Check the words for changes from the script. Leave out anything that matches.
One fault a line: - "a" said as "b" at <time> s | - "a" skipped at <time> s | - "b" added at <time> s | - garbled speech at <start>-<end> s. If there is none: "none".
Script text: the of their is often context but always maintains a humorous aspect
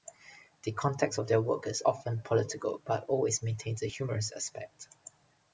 - "context" added at 0.7 s
- "work" added at 1.4 s
- "context" said as "political" at 2.2 s